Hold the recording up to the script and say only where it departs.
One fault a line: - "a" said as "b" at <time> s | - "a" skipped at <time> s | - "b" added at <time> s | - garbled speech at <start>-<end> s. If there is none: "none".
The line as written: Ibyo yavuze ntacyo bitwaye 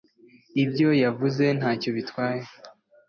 none